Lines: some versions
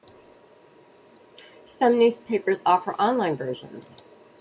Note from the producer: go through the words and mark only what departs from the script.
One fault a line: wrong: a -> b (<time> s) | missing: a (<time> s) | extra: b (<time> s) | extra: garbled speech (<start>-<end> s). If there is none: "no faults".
extra: newspapers offer online (2.0 s)